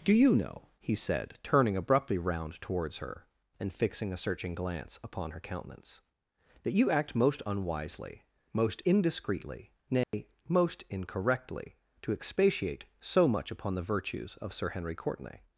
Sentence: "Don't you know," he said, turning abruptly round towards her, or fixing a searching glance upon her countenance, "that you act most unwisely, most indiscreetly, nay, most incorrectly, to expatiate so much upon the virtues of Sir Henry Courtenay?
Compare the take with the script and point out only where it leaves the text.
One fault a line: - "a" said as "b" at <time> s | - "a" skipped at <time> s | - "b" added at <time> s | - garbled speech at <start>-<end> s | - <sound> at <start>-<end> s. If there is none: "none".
- "Don't" said as "Do" at 0.0 s
- "or" said as "and" at 3.6 s
- dropout at 10.0-10.1 s